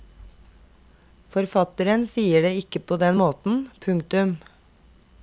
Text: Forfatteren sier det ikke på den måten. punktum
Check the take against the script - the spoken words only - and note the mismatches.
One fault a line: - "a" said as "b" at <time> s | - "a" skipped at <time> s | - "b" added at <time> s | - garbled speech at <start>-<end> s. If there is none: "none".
none